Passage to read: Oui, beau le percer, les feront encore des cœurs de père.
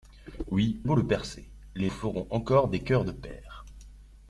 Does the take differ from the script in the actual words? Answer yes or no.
no